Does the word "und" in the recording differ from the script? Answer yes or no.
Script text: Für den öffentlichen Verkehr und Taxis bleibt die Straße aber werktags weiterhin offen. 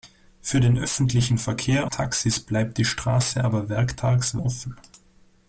yes